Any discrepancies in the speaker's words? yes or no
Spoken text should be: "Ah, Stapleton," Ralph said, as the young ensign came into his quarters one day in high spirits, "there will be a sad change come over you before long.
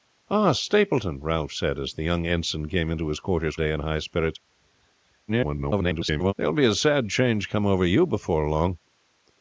yes